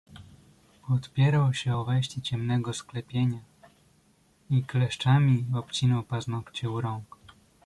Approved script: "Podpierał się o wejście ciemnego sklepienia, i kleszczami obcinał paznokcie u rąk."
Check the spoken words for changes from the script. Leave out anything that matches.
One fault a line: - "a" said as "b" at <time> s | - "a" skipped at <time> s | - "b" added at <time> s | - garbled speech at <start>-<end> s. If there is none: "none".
none